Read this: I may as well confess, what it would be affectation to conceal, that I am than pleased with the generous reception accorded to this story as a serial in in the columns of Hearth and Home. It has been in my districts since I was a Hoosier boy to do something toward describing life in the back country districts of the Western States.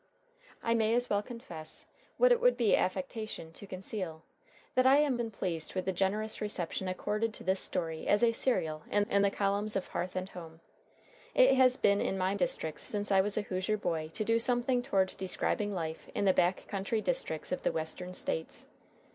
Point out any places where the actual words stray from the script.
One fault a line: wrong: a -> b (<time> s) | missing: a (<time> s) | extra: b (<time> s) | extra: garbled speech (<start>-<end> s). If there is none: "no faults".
no faults